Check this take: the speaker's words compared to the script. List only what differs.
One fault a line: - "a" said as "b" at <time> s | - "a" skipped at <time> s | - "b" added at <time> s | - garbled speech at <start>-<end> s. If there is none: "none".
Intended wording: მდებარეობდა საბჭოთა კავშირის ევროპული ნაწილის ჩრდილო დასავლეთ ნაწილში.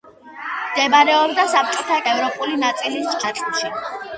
- "კავშირის" skipped at 2.0 s
- "ჩრდილო დასავლეთ" skipped at 3.2 s